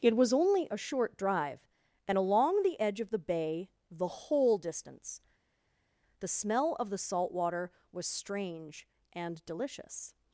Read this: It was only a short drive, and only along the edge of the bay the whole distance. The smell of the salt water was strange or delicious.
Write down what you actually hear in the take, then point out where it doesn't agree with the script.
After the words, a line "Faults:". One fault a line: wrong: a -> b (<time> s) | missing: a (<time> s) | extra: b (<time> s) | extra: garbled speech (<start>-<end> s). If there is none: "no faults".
It was only a short drive, and along the edge of the bay the whole distance. The smell of the salt water was strange and delicious.
Faults:
missing: only (2.2 s)
wrong: or -> and (9.1 s)